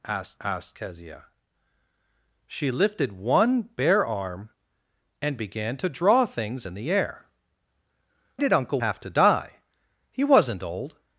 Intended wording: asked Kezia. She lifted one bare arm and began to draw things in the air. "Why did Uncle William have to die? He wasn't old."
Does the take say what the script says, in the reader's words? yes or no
no